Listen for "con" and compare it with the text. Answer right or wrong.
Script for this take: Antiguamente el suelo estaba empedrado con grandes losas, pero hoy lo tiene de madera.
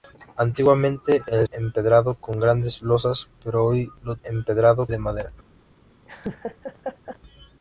right